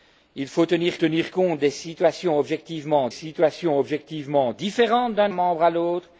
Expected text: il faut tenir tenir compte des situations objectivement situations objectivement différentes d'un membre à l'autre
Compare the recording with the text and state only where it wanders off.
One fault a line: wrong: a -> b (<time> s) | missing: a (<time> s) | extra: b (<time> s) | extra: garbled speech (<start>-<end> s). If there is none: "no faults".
no faults